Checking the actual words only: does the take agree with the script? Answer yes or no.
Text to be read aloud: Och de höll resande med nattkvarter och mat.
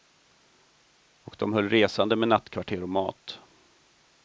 yes